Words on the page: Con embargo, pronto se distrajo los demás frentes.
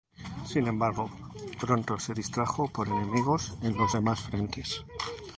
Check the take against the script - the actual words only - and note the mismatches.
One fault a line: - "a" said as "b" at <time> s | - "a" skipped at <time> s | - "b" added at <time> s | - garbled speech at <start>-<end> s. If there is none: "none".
- "Con" said as "Sin" at 0.5 s
- "por enemigos en" added at 2.7 s